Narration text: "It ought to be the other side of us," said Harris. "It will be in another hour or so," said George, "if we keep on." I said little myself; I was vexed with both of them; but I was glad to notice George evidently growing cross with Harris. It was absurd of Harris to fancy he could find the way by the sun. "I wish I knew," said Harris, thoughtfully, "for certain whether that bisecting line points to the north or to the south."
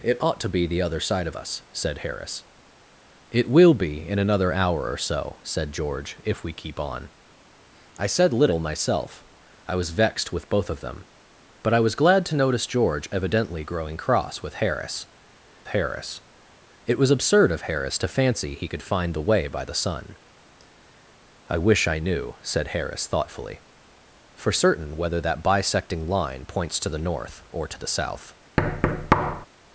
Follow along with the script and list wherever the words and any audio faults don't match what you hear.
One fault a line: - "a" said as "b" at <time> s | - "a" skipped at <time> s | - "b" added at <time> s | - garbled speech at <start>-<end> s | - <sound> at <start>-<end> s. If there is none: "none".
- "Harris" added at 15.7 s
- thud at 28.6-29.5 s